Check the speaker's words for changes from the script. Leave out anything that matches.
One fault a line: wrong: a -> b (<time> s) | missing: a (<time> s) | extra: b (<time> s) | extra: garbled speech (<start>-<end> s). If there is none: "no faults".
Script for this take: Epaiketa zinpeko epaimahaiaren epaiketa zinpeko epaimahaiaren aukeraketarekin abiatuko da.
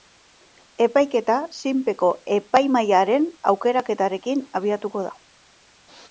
missing: epaiketa zinpeko epaimahaiaren (3.3 s)